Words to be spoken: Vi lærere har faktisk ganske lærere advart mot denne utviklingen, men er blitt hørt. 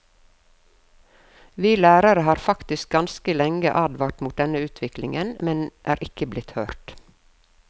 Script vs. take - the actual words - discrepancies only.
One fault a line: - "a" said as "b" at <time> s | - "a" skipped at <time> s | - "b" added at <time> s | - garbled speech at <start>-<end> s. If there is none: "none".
- "lærere" said as "lenge" at 3.4 s
- "ikke" added at 6.1 s